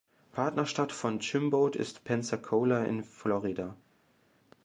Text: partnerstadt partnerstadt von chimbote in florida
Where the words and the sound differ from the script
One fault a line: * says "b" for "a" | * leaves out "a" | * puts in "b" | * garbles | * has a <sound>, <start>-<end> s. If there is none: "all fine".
* leaves out "partnerstadt"
* puts in "ist pensacola"